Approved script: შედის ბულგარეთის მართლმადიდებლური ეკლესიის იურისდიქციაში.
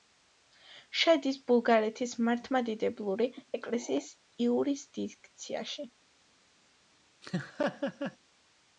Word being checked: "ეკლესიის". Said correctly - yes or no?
yes